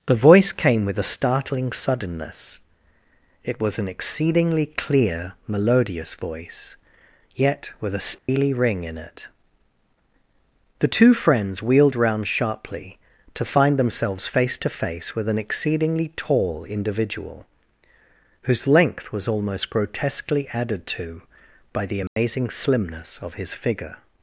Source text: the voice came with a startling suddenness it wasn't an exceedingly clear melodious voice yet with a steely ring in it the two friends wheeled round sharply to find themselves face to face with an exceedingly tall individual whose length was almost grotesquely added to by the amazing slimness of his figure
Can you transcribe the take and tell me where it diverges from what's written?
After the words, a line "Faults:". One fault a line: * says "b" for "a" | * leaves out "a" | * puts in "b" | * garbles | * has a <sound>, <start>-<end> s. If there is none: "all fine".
the voice came with a startling suddenness it was an exceedingly clear melodious voice yet with a steely ring in it the two friends wheeled round sharply to find themselves face to face with an exceedingly tall individual whose length was almost grotesquely added to by the amazing slimness of his figure
Faults:
* says "was" for "wasn't"
* has a dropout, 8.2-8.3 s
* has a dropout, 22.1-22.2 s